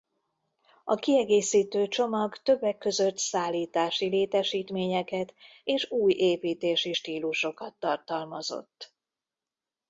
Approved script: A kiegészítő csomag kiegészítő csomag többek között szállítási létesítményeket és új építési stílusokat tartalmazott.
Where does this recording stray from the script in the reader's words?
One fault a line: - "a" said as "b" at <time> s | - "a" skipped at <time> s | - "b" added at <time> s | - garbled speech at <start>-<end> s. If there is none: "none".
- "kiegészítő csomag" skipped at 2.4 s